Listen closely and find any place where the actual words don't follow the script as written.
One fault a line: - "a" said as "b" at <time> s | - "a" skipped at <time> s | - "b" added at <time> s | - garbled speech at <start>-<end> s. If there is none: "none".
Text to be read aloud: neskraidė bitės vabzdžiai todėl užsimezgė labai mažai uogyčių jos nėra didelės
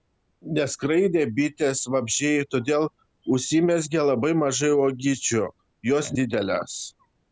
- "nėra" skipped at 6.2 s